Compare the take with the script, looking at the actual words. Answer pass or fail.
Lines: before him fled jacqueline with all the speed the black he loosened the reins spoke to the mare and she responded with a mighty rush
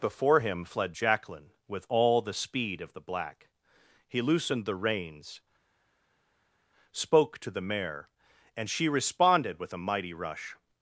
fail